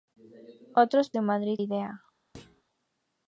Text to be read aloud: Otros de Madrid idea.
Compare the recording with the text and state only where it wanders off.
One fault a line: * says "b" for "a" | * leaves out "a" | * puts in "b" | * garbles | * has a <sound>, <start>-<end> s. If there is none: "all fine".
* has a thud, 2.3-2.6 s